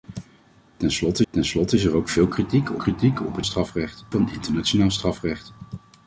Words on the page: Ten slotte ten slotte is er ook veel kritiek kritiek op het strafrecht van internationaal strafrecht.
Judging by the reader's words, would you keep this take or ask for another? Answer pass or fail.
pass